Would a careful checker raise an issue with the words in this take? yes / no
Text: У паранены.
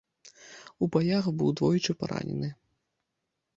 yes